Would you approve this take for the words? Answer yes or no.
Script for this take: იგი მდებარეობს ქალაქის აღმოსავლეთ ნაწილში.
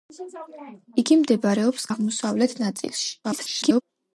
no